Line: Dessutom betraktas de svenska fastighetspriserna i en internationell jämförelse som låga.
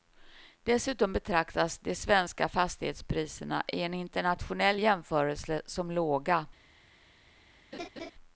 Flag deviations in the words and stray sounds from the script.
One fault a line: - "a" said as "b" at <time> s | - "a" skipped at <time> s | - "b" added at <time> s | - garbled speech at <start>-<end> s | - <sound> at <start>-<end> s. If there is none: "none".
- laugh at 7.7-8.1 s